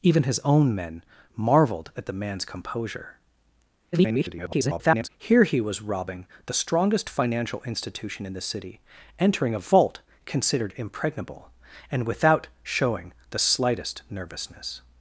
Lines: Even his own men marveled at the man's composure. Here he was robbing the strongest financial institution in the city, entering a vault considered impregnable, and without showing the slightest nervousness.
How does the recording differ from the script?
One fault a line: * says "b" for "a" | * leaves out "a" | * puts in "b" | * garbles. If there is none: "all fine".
* garbles